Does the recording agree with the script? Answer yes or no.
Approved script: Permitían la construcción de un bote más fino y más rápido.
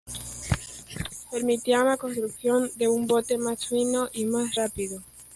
yes